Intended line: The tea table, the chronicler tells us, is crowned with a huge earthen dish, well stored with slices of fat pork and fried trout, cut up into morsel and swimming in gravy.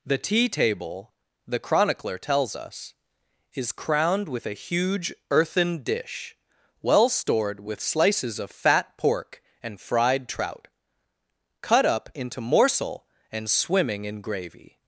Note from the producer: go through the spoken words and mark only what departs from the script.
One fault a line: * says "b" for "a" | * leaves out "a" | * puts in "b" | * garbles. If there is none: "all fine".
all fine